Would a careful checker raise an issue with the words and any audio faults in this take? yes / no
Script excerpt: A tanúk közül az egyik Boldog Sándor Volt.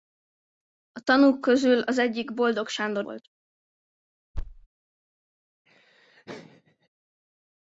yes